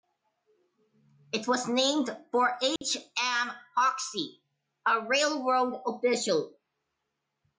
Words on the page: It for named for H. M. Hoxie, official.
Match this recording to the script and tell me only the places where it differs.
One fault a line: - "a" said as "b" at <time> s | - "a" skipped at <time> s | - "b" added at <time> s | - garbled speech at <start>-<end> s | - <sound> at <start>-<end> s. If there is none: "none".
- "for" said as "was" at 1.5 s
- dropout at 2.8-2.8 s
- "a railroad" added at 4.9 s